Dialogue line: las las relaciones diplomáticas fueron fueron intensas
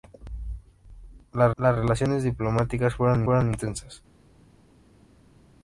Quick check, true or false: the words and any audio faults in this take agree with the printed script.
true